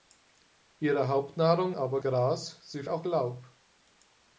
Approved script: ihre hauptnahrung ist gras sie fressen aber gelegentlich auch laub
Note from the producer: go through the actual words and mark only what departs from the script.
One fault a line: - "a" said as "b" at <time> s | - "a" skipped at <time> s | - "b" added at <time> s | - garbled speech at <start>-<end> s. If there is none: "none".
- "ist" said as "aber" at 1.8 s
- "fressen aber gelegentlich" skipped at 2.8 s